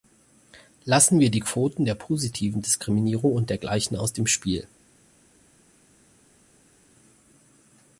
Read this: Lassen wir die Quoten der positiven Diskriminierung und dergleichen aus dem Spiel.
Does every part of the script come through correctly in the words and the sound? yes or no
yes